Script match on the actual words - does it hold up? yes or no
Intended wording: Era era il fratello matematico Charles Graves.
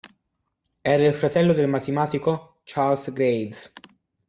no